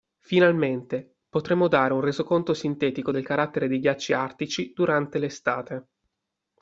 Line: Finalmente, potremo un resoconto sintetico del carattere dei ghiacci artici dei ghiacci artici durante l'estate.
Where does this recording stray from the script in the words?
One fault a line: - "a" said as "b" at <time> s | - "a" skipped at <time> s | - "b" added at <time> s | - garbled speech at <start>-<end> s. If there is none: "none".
- "dare" added at 1.7 s
- "dei ghiacci artici" skipped at 4.7 s